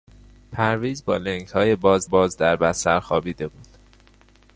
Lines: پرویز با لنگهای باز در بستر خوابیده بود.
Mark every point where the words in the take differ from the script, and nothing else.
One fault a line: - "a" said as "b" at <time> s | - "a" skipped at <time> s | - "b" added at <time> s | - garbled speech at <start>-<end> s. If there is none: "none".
- "باز" added at 2.0 s